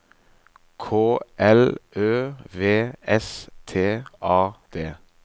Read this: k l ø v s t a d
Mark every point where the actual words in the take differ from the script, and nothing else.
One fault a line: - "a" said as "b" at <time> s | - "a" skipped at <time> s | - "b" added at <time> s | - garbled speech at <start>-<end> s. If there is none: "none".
none